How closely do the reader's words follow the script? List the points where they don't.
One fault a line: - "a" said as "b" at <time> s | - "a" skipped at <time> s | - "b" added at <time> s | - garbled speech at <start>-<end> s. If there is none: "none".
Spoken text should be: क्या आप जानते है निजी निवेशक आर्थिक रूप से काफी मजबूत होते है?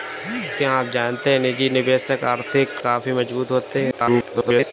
- "रूप से" skipped at 2.8 s
- garbled speech at 3.9-4.7 s